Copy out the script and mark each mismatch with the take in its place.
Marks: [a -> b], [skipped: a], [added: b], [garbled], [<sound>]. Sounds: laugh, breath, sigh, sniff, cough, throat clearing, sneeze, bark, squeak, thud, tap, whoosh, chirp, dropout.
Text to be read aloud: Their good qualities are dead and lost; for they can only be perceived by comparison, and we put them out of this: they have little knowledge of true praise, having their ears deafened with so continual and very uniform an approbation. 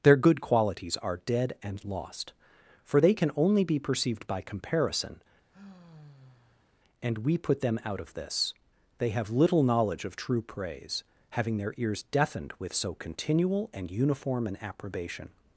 Their good qualities are dead and lost; for they can only be perceived by comparison, [sigh] and we put them out of this: they have little knowledge of true praise, having their ears deafened with so continual and [skipped: very] uniform an approbation.